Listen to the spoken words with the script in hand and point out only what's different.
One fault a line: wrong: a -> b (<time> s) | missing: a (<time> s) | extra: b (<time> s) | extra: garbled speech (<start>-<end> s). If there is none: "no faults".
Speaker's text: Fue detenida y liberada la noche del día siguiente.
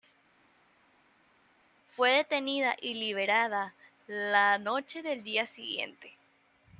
no faults